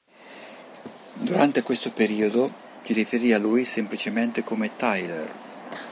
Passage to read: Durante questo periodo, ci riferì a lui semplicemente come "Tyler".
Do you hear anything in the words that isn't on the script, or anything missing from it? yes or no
no